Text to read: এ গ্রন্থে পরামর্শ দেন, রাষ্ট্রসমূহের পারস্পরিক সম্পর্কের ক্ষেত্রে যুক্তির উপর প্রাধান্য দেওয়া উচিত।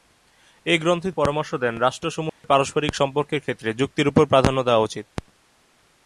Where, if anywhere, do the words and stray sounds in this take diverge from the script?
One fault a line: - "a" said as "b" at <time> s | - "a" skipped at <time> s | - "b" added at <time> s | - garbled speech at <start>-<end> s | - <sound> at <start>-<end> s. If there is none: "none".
- dropout at 2.3-2.4 s